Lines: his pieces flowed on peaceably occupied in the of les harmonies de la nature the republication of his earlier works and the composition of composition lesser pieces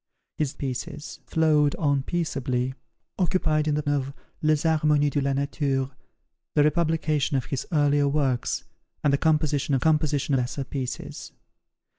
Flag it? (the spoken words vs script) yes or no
no